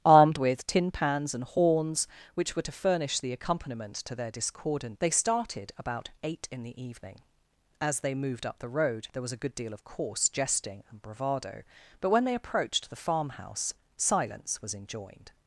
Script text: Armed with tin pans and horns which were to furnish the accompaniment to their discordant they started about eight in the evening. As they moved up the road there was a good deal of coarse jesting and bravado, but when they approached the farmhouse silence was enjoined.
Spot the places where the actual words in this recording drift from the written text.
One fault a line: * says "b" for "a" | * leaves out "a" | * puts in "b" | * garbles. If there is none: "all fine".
all fine